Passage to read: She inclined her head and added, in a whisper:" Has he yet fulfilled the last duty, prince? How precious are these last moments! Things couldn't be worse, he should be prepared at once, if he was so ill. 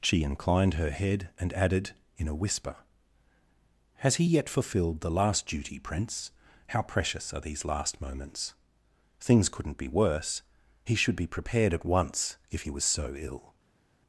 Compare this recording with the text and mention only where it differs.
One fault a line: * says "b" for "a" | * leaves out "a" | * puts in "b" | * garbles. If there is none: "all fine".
all fine